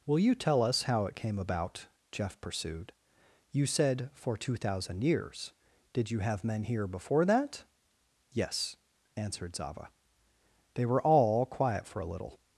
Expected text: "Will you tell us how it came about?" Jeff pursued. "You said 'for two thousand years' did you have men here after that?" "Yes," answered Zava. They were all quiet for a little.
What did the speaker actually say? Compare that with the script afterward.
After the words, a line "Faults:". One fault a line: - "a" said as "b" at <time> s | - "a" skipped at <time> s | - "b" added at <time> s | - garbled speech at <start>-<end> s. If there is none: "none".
"Will you tell us how it came about?" Jeff pursued. "You said 'for two thousand years' did you have men here before that?" "Yes," answered Zava. They were all quiet for a little.
Faults:
- "after" said as "before" at 6.9 s